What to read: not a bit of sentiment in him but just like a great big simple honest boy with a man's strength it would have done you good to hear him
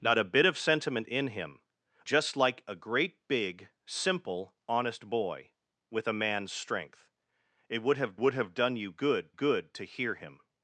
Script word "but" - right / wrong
wrong